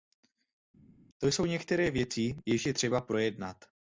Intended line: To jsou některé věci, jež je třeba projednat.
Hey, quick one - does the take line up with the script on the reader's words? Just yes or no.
yes